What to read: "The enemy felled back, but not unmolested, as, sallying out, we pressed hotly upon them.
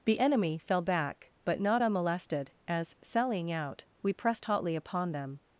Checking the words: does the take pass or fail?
fail